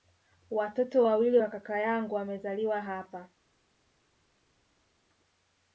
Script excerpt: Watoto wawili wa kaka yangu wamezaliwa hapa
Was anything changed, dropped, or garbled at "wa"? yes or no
no